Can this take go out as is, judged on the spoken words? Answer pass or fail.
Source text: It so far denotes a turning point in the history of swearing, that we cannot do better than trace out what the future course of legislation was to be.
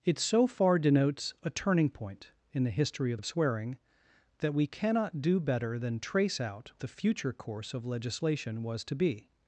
fail